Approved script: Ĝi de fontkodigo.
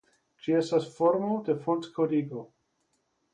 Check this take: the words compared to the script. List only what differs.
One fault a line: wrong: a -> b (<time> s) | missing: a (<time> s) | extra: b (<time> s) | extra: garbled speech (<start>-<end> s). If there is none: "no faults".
extra: estas formo (0.6 s)